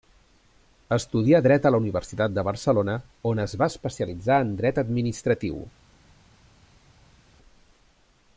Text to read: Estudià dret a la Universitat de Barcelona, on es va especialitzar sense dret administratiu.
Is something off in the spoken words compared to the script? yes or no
yes